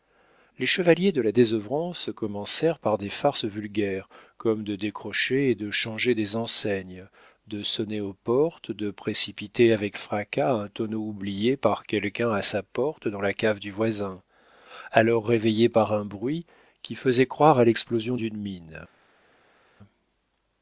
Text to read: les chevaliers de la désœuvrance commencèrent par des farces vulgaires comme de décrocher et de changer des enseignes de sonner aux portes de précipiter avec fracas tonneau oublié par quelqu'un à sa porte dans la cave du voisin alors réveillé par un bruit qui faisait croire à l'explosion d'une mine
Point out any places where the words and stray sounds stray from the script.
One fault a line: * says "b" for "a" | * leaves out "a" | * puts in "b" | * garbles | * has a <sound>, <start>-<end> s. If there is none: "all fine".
* puts in "un"